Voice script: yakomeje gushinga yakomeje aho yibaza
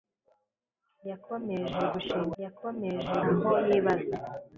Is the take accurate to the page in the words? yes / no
yes